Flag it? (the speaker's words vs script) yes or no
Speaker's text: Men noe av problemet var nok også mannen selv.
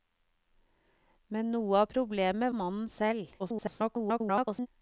yes